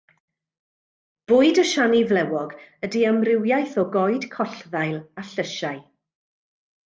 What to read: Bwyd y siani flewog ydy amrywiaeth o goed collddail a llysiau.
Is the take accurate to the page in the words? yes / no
yes